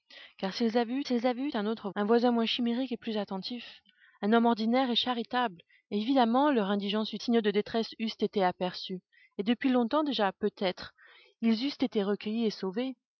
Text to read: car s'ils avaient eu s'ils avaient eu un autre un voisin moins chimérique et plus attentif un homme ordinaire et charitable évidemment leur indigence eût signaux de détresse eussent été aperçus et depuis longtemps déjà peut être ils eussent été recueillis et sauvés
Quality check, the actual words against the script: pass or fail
pass